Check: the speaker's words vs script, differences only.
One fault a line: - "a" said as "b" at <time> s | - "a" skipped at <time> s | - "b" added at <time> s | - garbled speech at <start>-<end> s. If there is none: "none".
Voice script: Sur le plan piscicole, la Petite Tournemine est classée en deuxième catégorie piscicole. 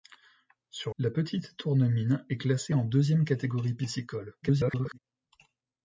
- "le plan piscicole" skipped at 0.9 s
- garbled speech at 4.4-5.0 s